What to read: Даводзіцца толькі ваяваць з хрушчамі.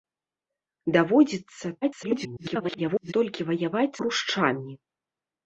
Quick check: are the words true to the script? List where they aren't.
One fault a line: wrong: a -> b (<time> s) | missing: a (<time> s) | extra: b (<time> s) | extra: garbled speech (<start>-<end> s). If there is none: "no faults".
extra: garbled speech (1.8-3.1 s)
missing: з (4.0 s)